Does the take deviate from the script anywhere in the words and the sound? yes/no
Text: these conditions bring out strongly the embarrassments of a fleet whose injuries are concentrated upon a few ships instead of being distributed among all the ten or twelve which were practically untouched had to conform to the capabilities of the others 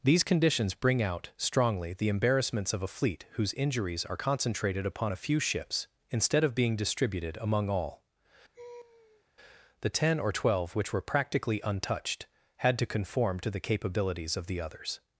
yes